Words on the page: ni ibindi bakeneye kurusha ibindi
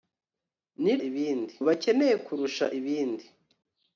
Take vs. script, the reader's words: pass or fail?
pass